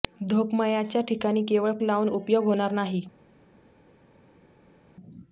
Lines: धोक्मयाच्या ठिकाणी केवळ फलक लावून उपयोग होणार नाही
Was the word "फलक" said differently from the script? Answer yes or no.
yes